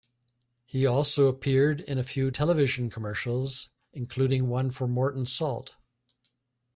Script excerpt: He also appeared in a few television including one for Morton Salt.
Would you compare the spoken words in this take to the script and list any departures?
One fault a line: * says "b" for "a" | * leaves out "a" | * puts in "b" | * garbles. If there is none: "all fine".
* puts in "commercials"